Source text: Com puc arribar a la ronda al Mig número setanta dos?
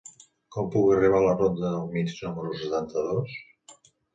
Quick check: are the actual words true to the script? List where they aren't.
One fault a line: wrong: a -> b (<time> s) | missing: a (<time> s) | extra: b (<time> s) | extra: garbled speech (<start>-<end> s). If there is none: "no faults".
wrong: al -> del (1.7 s)